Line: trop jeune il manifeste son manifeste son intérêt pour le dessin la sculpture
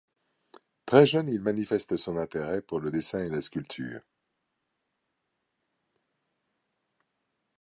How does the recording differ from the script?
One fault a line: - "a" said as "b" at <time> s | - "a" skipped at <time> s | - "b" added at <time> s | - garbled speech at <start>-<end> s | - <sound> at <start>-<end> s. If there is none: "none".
- "trop" said as "très" at 0.9 s
- "manifeste son" skipped at 2.2 s
- "et" added at 3.2 s